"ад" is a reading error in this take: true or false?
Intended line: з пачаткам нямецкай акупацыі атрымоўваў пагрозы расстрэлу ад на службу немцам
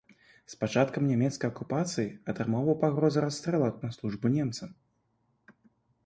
false